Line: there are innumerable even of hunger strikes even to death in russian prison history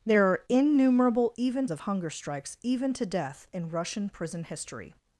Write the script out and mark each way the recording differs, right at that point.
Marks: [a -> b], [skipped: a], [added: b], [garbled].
there are innumerable even of hunger strikes even to death in russian prison history